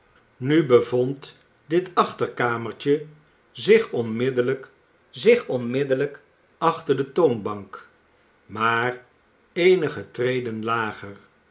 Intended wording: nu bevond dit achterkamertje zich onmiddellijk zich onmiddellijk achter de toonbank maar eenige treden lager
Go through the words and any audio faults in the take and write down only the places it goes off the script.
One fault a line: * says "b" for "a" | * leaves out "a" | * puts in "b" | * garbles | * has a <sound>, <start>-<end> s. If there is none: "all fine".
all fine